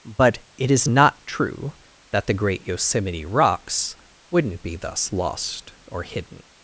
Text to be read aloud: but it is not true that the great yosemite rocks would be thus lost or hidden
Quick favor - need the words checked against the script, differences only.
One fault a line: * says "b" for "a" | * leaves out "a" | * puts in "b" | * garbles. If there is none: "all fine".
* says "wouldn't" for "would"